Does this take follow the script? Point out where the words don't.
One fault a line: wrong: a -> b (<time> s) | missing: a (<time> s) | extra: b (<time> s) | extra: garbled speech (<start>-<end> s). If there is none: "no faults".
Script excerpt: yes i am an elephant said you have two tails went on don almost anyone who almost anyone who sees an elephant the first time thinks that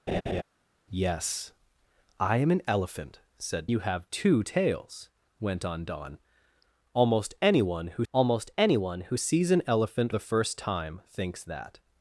no faults